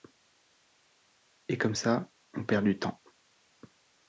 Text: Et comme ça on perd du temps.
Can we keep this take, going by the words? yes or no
yes